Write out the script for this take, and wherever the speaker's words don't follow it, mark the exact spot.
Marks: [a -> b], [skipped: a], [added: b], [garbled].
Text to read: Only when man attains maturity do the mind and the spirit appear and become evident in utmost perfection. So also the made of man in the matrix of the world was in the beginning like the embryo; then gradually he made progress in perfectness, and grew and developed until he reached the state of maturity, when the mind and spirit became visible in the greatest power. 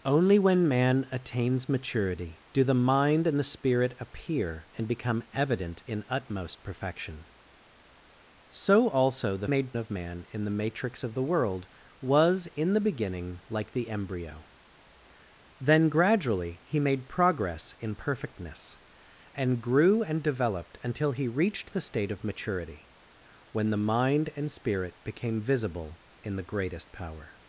Only when man attains maturity do the mind and the spirit appear and become evident in utmost perfection. So also the made of man in the matrix of the world was in the beginning like the embryo; then gradually he made progress in perfectness, and grew and developed until he reached the state of maturity, when the mind and spirit became visible in the greatest power.